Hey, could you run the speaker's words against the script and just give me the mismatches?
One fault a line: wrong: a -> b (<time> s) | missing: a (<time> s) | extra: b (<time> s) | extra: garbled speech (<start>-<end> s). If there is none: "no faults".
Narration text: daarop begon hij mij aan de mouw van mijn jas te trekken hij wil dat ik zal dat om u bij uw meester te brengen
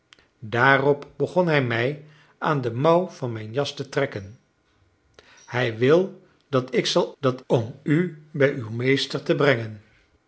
no faults